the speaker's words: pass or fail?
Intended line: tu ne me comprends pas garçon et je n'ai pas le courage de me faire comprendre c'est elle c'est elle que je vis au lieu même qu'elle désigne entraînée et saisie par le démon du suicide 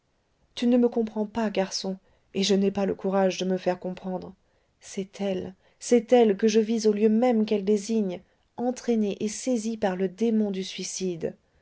pass